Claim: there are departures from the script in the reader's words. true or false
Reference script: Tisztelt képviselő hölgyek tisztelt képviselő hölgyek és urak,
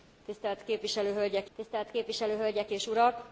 false